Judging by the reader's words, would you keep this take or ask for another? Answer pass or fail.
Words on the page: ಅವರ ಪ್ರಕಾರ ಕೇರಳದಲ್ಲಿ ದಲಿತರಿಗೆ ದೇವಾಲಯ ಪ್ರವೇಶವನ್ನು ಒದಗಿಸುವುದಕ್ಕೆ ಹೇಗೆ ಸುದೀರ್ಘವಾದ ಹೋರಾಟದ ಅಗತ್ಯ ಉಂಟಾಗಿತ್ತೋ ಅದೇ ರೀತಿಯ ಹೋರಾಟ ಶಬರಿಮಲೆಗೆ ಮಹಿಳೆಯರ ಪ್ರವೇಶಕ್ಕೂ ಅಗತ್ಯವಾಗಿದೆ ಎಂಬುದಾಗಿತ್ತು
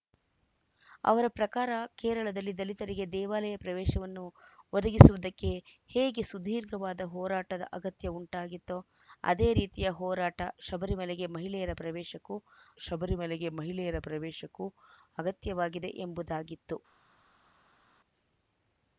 fail